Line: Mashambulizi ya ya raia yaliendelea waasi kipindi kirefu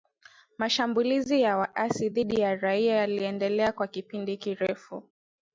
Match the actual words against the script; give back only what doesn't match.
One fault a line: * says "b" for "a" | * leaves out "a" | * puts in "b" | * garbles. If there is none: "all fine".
* puts in "waasi dhidi"
* says "kwa" for "waasi"